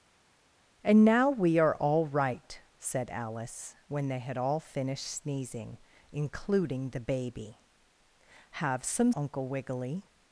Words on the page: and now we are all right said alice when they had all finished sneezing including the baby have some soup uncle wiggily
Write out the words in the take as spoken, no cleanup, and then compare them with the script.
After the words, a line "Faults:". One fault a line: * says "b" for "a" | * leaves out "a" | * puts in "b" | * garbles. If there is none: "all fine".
and now we are all right said alice when they had all finished sneezing including the baby have some uncle wiggily
Faults:
* leaves out "soup"